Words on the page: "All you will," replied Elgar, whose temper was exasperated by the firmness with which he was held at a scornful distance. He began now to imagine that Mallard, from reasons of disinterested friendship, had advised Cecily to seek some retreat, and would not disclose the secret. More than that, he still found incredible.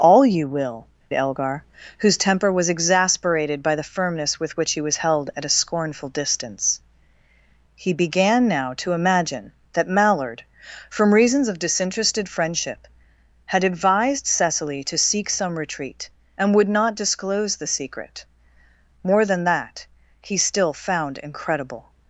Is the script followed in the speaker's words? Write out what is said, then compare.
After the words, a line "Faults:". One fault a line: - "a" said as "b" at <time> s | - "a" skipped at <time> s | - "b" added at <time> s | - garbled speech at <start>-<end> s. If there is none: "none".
"All you will," Elgar, whose temper was exasperated by the firmness with which he was held at a scornful distance. He began now to imagine that Mallard, from reasons of disinterested friendship, had advised Cecily to seek some retreat, and would not disclose the secret. More than that, he still found incredible.
Faults:
- "replied" skipped at 0.9 s